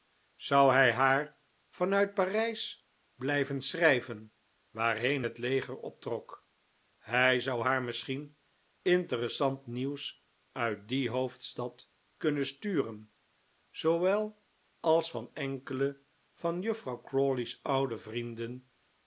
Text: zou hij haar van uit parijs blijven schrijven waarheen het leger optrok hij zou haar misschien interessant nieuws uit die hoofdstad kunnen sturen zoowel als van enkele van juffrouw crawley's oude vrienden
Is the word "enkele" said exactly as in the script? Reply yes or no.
yes